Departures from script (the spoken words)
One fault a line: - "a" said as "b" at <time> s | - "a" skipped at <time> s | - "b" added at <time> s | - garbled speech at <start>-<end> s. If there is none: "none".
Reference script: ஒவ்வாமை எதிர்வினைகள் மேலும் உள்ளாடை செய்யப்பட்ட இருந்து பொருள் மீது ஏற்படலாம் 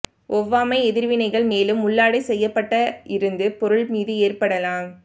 none